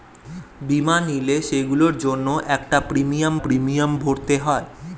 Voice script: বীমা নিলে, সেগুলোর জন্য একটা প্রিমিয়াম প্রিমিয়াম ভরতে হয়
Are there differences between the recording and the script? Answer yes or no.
no